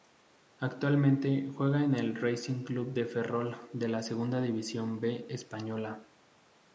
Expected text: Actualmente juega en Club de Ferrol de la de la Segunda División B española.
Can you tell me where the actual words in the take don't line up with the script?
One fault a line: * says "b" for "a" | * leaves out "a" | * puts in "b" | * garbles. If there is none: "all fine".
* puts in "el Racing"
* leaves out "de la"